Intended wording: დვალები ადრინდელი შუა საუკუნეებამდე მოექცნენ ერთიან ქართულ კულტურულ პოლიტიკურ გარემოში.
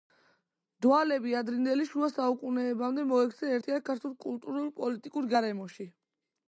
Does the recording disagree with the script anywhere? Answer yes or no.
no